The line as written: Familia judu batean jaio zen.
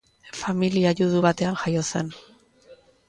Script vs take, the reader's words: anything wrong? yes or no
no